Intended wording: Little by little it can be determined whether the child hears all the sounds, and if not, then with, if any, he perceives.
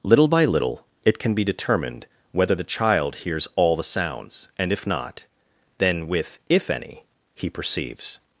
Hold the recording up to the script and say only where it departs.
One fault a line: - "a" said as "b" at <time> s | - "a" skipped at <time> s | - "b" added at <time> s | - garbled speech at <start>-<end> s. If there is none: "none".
none